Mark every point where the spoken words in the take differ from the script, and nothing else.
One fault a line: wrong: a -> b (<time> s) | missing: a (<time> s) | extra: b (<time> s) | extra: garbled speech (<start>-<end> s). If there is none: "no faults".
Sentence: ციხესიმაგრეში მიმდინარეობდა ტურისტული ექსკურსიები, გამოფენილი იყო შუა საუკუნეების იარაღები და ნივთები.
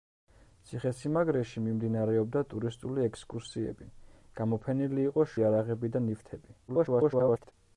missing: შუა საუკუნეების (5.3 s)
extra: garbled speech (6.7-7.5 s)